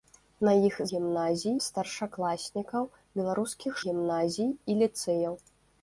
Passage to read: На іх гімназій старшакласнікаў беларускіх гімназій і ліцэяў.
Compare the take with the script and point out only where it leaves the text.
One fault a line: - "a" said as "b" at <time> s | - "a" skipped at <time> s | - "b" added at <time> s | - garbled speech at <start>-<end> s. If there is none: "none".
none